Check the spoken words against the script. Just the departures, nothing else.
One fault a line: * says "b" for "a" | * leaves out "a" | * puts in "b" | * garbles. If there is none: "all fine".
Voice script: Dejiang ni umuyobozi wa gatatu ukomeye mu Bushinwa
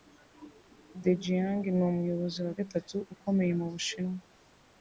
all fine